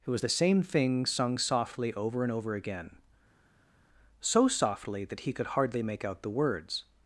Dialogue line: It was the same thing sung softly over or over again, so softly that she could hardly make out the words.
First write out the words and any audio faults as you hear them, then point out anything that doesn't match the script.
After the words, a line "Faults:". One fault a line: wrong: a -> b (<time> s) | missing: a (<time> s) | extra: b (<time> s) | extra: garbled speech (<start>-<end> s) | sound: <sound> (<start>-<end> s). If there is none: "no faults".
It was the same thing sung softly over and over again, so softly that he could hardly make out the words.
Faults:
wrong: or -> and (2.2 s)
wrong: she -> he (5.2 s)